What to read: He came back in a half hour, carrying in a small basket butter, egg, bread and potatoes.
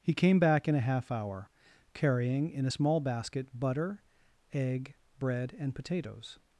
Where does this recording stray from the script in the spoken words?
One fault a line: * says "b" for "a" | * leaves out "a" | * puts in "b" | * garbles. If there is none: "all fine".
all fine